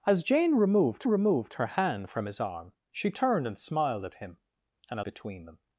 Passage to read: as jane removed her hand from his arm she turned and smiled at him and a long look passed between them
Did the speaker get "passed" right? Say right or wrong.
wrong